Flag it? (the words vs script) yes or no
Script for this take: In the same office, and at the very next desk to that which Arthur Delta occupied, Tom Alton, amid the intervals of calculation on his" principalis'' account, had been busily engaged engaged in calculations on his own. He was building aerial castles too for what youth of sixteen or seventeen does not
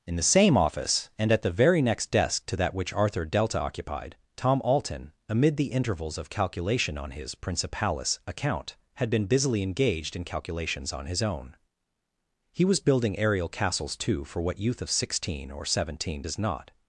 yes